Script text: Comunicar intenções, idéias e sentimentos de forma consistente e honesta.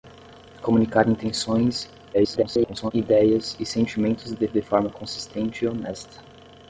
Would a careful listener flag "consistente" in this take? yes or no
no